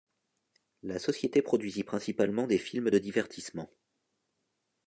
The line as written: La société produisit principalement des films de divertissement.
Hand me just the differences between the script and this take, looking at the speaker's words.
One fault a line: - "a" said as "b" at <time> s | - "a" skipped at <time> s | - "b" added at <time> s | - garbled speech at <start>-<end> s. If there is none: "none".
none